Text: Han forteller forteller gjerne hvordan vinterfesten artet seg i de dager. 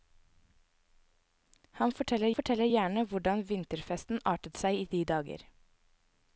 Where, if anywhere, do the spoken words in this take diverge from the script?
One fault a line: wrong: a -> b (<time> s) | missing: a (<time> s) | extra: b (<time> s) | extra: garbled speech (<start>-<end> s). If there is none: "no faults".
no faults